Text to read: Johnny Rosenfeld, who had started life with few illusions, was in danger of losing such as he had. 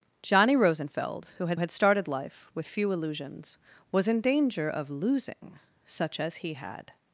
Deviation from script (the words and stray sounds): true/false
true